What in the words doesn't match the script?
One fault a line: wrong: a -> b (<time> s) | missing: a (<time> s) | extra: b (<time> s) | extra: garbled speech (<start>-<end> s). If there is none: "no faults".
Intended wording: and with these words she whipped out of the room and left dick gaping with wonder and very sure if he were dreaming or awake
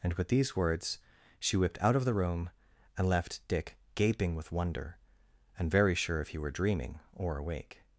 no faults